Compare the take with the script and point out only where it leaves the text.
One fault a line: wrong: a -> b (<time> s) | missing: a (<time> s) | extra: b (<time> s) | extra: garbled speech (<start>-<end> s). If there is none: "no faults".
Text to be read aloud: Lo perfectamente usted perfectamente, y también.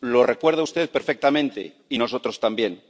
wrong: perfectamente -> recuerda (0.2 s)
extra: nosotros (1.9 s)